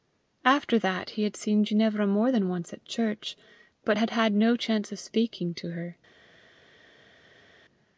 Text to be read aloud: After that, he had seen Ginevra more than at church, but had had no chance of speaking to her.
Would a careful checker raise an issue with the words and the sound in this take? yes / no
yes